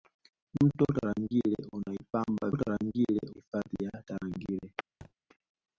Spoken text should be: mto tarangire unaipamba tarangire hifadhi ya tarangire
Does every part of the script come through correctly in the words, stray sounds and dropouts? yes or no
no